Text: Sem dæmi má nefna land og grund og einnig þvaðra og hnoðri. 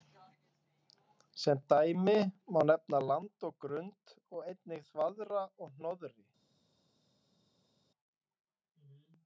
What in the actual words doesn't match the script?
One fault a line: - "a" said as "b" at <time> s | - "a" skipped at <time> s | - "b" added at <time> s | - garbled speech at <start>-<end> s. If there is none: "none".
none